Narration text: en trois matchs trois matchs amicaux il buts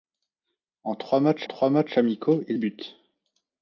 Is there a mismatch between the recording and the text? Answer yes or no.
no